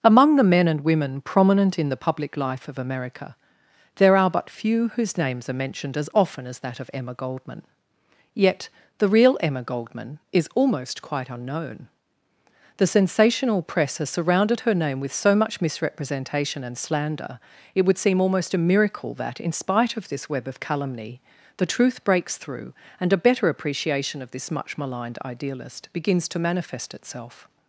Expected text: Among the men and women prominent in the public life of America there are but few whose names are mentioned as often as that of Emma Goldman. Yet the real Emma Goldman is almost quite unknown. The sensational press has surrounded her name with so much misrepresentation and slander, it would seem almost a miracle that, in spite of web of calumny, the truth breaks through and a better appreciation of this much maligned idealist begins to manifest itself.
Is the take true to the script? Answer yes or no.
no